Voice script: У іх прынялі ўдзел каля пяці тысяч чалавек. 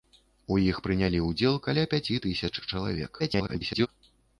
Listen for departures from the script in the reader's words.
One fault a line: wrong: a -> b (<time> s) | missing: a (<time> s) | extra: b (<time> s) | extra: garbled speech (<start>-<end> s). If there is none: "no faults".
extra: garbled speech (3.2-3.9 s)